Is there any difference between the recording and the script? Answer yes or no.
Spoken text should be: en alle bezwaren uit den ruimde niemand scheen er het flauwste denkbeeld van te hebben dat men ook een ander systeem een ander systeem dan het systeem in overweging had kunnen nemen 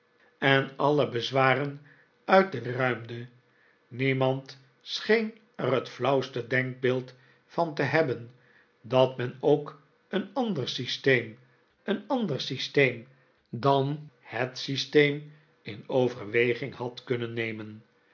no